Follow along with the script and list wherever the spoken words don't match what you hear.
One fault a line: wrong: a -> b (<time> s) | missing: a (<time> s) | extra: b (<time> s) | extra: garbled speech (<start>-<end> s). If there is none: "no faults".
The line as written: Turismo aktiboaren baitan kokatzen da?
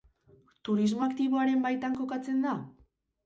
no faults